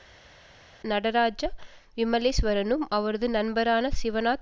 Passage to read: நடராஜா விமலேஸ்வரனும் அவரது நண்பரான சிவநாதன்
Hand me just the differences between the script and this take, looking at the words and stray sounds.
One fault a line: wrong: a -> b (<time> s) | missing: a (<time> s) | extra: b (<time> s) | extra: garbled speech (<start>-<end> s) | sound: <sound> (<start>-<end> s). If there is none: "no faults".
no faults